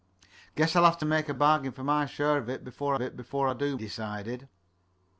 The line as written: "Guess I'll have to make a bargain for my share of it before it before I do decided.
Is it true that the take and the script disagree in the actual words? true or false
false